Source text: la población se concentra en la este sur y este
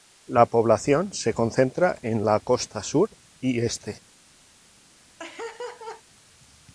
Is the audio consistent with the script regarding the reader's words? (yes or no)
no